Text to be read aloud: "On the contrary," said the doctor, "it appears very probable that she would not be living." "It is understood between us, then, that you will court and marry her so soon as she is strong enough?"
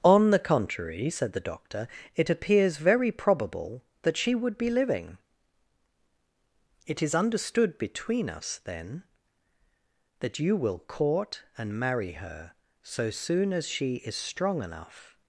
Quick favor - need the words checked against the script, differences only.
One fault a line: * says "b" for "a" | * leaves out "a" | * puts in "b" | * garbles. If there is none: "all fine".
* leaves out "not"